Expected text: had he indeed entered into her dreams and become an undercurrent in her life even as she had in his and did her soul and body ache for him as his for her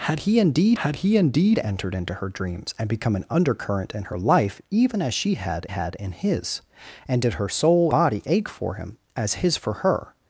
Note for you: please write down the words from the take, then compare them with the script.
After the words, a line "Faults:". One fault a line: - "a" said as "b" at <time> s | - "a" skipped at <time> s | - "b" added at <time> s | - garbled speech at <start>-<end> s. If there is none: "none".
had he indeed had he indeed entered into her dreams and become an undercurrent in her life even as she had had in his and did her soul body ache for him as his for her
Faults:
- "had he indeed" added at 0.8 s
- "had" added at 5.6 s
- "and" skipped at 7.9 s